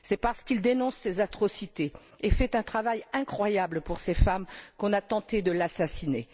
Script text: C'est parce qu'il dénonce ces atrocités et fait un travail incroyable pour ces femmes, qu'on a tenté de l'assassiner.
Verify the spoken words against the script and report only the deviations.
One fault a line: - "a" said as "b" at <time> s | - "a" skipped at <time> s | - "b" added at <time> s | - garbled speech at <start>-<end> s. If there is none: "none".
none